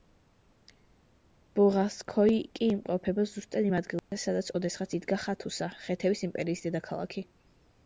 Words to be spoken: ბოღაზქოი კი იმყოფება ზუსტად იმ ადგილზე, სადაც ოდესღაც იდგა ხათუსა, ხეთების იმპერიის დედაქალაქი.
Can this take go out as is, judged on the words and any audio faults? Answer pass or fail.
fail